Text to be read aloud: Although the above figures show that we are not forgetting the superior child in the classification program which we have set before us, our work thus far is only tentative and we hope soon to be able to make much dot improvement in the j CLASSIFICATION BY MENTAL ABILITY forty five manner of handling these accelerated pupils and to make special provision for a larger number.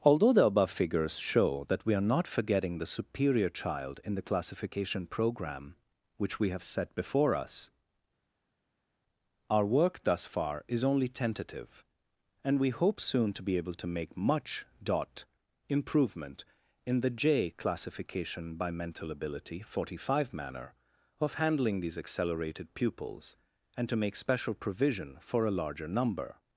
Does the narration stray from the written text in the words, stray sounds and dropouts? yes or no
no